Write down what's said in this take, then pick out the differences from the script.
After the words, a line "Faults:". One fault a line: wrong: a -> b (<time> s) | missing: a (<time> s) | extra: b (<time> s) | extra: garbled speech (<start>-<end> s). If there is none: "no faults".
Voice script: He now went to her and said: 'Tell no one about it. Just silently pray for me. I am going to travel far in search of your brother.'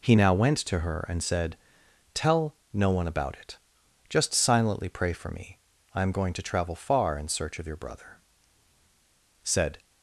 He now went to her and said: 'Tell no one about it. Just silently pray for me. I am going to travel far in search of your brother.' "Said
Faults:
extra: Said (9.4 s)